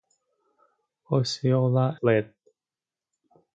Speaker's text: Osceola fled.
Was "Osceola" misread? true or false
false